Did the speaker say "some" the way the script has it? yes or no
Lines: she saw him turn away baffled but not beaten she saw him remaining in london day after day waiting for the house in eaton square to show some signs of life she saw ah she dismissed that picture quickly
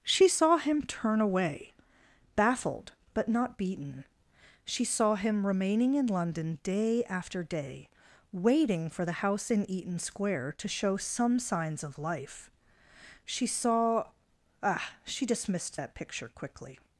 yes